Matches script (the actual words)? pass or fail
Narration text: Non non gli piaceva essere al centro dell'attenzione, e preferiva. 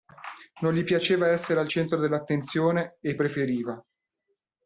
fail